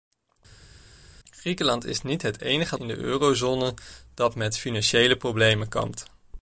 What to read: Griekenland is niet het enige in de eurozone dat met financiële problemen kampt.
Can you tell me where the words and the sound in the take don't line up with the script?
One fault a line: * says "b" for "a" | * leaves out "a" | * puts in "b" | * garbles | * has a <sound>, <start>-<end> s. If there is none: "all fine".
all fine